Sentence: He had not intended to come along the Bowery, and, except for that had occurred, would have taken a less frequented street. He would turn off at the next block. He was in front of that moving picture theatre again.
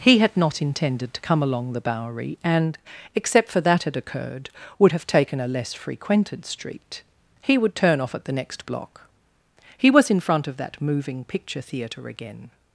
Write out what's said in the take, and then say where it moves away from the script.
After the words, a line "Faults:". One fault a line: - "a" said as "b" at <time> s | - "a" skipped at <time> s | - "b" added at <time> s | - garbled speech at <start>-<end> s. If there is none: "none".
He had not intended to come along the Bowery, and, except for that had occurred, would have taken a less frequented street. He would turn off at the next block. He was in front of that moving picture theatre again.
Faults:
none